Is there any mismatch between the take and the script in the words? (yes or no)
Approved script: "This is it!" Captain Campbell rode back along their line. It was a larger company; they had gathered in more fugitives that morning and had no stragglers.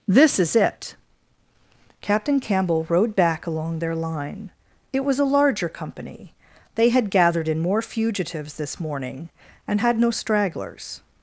yes